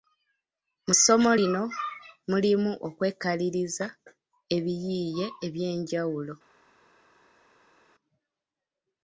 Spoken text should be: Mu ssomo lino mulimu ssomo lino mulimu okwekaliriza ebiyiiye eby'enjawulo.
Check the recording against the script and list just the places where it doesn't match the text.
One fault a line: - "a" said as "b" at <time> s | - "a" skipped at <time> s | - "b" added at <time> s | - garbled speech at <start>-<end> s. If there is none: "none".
- "ssomo lino mulimu" skipped at 2.7 s